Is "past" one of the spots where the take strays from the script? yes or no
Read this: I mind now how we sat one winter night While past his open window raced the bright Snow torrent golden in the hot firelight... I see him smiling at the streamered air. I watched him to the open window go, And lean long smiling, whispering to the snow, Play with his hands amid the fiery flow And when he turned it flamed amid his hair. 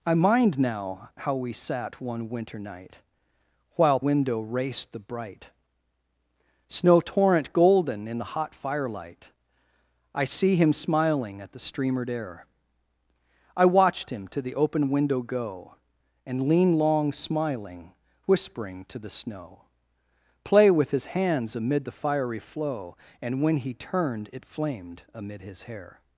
yes